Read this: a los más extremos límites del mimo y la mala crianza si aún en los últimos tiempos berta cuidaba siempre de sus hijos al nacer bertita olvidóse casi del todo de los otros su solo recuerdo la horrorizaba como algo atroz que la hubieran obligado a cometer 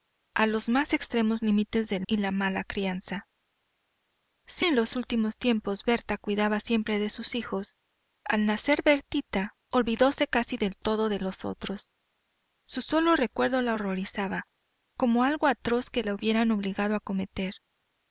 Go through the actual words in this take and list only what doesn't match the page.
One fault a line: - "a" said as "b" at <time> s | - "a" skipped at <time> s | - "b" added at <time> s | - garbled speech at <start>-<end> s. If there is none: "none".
- "mimo" skipped at 2.1 s
- "aún" skipped at 4.7 s